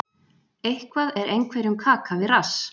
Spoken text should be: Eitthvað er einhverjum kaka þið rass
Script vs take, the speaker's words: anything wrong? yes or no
yes